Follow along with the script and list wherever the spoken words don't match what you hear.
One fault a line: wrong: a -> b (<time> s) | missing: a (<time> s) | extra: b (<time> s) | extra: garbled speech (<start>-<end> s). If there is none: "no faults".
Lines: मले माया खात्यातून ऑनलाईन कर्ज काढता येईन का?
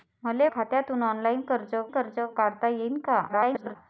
missing: माया (0.5 s)
extra: कर्ज (1.9 s)
extra: garbled speech (3.3-3.8 s)